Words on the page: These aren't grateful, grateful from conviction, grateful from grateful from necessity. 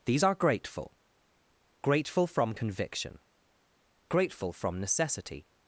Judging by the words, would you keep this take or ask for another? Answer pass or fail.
fail